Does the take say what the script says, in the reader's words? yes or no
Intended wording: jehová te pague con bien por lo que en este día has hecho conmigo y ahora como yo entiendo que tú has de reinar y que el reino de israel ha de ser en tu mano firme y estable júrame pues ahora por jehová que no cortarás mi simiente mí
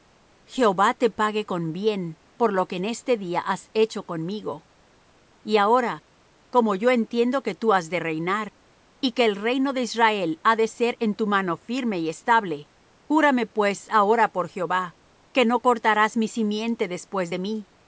no